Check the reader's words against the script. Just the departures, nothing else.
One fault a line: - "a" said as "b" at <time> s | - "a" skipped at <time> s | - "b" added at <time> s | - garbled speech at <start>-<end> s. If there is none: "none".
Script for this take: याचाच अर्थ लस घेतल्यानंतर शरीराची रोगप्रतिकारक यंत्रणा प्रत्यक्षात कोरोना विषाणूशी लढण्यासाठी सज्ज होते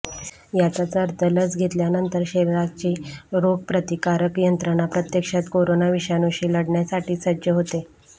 none